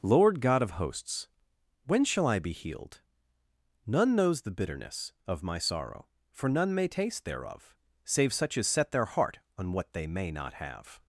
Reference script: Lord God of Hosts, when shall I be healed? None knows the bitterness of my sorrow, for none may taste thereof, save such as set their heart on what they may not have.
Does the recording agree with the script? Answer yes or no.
yes